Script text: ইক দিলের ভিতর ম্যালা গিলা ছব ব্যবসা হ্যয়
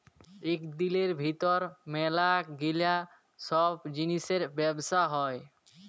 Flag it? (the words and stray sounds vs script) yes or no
yes